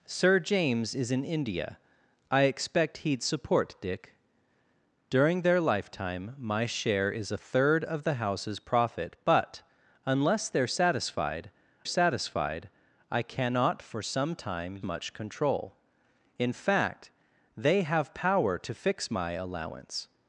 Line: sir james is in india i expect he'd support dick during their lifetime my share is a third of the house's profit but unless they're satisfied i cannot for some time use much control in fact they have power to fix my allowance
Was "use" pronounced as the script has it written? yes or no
no